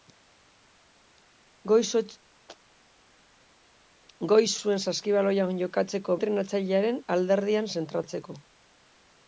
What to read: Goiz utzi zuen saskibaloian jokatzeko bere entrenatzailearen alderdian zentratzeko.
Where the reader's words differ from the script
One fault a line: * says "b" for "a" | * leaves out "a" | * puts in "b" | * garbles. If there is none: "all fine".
* leaves out "utzi"
* leaves out "bere"